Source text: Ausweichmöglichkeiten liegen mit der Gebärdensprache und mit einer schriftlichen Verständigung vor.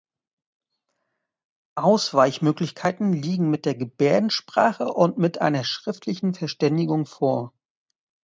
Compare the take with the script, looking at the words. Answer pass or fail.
pass